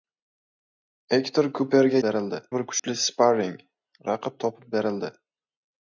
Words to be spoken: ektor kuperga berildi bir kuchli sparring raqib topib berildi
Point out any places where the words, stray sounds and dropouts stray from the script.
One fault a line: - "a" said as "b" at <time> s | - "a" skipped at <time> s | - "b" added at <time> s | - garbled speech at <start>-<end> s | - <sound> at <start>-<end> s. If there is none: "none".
- dropout at 2.8-2.8 s